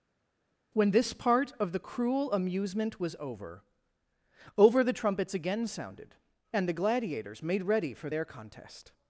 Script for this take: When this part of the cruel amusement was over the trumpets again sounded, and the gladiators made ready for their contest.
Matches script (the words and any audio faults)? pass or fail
fail